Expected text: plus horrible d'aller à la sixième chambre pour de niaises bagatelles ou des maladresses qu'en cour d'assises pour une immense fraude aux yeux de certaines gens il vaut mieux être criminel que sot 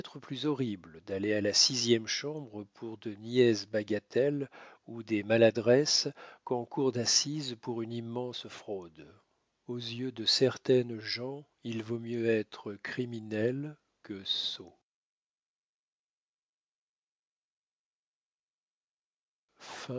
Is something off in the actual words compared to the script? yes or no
no